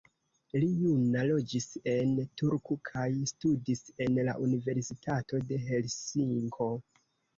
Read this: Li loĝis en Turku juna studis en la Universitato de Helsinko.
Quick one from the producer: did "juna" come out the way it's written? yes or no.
no